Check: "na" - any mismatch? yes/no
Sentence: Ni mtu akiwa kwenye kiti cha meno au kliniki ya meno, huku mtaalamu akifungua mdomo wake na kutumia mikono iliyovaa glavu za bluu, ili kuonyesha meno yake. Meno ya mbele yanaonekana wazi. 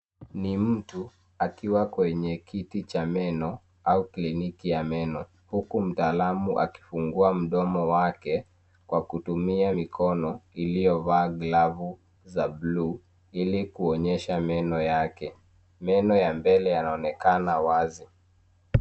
yes